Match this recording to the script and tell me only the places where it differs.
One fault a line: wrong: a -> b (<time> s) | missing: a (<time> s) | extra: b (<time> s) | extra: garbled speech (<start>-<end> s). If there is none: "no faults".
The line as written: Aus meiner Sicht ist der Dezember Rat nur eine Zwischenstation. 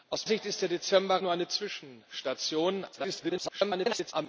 missing: meiner (0.3 s)
missing: Rat (1.2 s)
extra: garbled speech (2.9-4.1 s)